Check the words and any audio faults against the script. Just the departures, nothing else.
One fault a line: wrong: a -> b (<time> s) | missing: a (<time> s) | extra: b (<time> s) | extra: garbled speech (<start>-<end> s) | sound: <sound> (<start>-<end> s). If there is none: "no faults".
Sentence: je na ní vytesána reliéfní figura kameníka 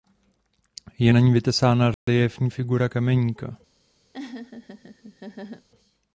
sound: dropout (1.9-2.1 s)
sound: laugh (4.1-5.7 s)